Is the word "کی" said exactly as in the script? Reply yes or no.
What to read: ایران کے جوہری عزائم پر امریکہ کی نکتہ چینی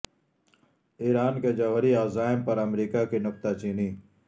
yes